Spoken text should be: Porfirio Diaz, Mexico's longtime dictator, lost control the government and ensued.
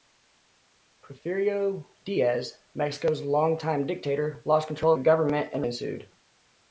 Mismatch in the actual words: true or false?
false